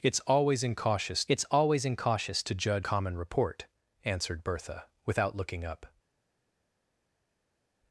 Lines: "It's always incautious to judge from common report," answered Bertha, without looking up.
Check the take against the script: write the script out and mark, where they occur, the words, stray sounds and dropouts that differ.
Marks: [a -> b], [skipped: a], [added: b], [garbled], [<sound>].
"It's always incautious [added: it's always incautious] to judge [skipped: from] common report," answered Bertha, without looking up.